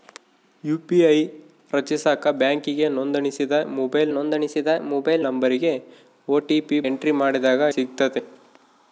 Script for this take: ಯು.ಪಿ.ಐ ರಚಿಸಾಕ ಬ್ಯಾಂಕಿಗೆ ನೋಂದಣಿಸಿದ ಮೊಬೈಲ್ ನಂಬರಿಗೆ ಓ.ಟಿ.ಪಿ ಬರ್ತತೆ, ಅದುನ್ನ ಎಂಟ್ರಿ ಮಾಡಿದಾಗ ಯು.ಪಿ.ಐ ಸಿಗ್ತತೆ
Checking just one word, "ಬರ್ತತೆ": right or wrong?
wrong